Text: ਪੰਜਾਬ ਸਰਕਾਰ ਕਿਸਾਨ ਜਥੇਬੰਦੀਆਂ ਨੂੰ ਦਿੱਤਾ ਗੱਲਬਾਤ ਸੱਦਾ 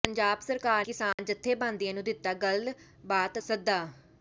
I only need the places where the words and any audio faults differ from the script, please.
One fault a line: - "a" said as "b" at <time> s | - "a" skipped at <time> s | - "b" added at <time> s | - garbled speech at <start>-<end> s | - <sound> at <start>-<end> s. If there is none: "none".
- dropout at 1.1-1.2 s